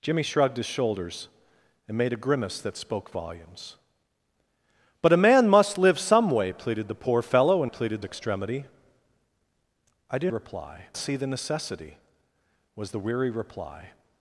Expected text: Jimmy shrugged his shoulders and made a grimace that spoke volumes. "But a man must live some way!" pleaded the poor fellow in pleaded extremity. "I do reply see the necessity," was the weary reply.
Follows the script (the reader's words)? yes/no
yes